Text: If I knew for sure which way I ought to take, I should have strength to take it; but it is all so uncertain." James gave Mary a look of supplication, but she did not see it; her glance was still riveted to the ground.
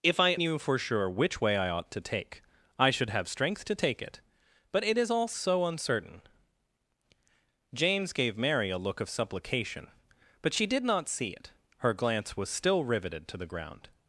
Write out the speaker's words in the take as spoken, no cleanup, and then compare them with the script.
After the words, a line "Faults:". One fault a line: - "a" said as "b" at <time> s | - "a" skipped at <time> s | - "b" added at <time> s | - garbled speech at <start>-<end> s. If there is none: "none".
If I knew for sure which way I ought to take, I should have strength to take it; but it is all so uncertain." James gave Mary a look of supplication, but she did not see it; her glance was still riveted to the ground.
Faults:
none